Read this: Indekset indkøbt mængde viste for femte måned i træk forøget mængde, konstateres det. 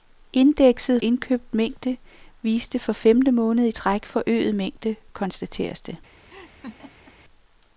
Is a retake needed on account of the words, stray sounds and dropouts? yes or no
yes